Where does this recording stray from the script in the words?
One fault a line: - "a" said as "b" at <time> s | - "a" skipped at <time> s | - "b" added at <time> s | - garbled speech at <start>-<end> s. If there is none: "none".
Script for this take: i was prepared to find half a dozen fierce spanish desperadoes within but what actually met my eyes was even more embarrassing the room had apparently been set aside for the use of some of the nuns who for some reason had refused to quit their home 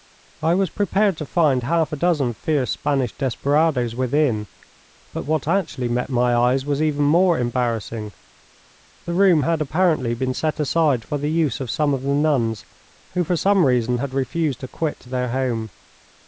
none